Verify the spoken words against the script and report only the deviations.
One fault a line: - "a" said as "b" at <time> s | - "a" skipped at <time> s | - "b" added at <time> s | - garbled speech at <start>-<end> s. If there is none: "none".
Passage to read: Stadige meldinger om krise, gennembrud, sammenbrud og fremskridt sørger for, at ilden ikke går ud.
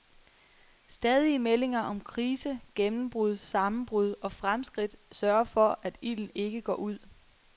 none